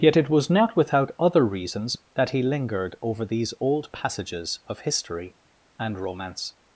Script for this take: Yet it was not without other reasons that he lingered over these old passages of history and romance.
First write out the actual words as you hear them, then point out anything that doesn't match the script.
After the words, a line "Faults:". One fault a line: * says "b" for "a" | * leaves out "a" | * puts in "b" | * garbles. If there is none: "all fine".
Yet it was not without other reasons that he lingered over these old passages of history and romance.
Faults:
all fine